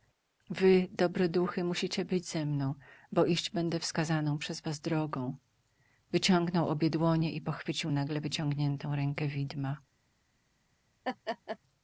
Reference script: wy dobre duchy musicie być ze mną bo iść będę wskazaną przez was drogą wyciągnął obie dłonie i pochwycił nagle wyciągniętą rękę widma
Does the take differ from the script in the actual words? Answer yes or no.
no